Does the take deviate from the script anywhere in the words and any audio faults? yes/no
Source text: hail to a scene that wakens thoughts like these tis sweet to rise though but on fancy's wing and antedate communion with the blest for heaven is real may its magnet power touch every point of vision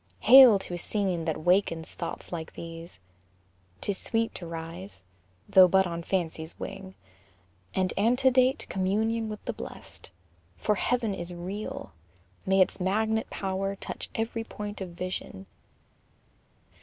no